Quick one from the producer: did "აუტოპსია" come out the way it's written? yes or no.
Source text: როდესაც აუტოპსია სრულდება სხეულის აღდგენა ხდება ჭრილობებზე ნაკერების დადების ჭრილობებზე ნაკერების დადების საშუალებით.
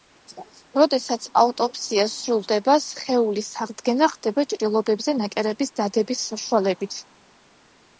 yes